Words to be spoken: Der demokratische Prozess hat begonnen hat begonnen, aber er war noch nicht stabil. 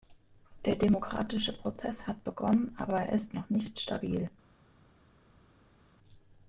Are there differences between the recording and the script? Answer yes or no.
yes